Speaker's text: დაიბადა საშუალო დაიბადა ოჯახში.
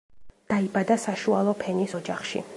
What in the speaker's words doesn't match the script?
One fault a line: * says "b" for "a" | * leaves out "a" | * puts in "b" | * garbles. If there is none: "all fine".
* says "ფენის" for "დაიბადა"